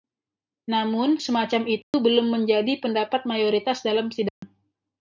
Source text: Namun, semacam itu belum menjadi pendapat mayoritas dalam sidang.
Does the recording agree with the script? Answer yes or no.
yes